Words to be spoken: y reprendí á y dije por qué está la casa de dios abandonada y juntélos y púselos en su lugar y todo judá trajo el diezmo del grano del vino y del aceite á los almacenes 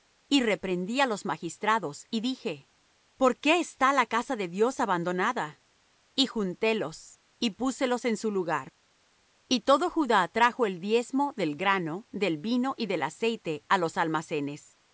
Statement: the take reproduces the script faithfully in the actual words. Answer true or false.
false